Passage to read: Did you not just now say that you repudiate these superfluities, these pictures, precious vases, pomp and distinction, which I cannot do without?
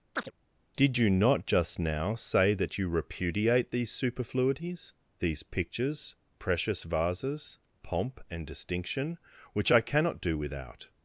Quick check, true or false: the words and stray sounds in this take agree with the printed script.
false